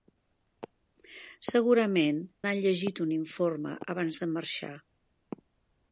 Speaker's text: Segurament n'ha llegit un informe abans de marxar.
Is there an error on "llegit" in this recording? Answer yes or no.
no